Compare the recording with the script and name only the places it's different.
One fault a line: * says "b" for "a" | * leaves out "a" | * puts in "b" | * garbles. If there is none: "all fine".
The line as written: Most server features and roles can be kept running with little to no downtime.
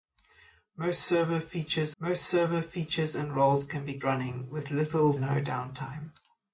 * puts in "most server features"
* leaves out "kept"
* leaves out "to"